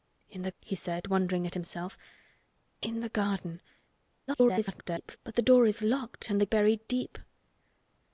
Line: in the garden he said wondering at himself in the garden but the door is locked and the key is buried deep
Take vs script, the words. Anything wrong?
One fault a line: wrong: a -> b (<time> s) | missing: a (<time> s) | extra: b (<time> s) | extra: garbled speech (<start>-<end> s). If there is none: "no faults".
missing: garden (0.5 s)
extra: garbled speech (4.3-5.2 s)
missing: key is (6.5 s)